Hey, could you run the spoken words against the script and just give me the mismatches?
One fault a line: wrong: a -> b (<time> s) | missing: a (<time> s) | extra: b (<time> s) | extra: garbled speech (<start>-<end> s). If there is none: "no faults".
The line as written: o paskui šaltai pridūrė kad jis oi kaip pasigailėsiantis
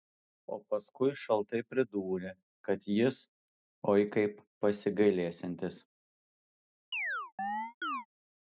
no faults